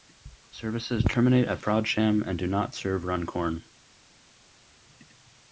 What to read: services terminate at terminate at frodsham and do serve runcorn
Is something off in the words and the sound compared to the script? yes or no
yes